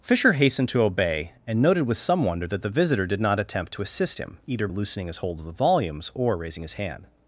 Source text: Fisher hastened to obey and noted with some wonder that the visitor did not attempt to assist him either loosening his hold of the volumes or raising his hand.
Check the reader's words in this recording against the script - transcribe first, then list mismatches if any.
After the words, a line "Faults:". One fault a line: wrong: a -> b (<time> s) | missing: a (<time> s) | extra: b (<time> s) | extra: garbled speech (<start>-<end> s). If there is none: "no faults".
Fisher hastened to obey and noted with some wonder that the visitor did not attempt to assist him either loosening his hold of the volumes or raising his hand.
Faults:
no faults